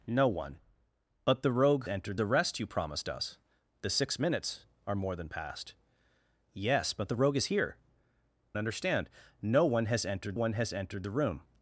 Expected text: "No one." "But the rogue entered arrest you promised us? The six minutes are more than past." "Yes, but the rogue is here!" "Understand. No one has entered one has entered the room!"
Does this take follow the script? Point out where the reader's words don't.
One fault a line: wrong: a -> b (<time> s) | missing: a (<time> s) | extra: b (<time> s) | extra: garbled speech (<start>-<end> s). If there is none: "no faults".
no faults